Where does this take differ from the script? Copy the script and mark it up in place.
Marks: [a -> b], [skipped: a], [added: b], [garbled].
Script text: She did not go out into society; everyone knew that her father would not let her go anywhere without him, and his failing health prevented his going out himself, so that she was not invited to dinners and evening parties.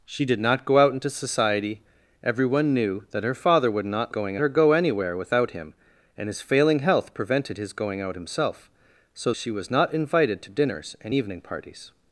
She did not go out into society; everyone knew that her father would not [let -> going] her go anywhere without him, and his failing health prevented his going out himself, so [skipped: that] she was not invited to dinners and evening parties.